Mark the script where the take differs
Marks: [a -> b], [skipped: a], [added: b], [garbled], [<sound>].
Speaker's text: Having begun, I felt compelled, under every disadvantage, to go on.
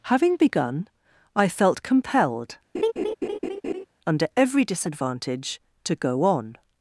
Having begun, I felt compelled, [laugh] under every disadvantage, to go on.